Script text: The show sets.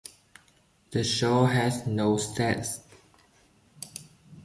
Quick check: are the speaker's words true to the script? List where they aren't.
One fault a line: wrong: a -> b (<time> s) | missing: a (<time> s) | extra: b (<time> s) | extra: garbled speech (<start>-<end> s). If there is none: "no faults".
extra: has no (1.4 s)